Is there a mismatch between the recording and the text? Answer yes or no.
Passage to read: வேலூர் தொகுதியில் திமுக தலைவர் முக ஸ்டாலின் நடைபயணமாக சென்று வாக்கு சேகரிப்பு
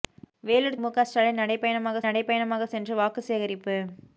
yes